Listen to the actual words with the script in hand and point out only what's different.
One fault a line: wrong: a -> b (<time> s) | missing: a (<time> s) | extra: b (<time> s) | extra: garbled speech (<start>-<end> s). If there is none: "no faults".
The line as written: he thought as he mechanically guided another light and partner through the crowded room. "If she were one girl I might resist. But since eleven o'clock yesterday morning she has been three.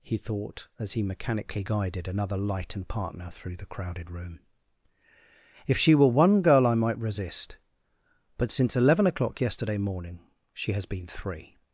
no faults